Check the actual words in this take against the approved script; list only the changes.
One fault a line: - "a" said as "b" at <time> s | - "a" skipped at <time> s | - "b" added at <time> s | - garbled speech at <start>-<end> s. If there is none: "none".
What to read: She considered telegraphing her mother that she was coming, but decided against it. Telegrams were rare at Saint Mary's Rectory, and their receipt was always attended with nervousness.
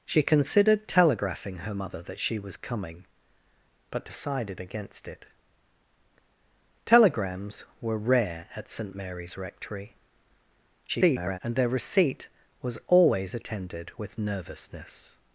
- garbled speech at 10.9-11.4 s